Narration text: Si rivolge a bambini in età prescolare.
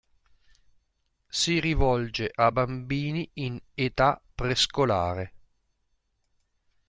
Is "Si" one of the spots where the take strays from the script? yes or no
no